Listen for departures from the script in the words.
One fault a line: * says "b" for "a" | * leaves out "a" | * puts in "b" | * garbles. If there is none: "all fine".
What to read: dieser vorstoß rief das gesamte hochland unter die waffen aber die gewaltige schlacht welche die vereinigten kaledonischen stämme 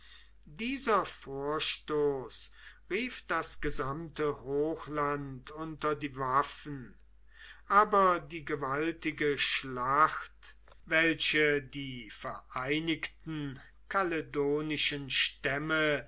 all fine